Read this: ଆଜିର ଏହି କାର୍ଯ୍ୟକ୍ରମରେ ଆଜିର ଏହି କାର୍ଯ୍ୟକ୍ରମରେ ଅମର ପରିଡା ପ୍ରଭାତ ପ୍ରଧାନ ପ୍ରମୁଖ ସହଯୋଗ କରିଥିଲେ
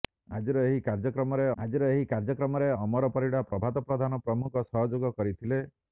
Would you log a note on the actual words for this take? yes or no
no